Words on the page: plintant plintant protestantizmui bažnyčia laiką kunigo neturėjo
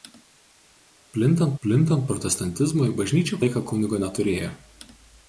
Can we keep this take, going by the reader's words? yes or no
yes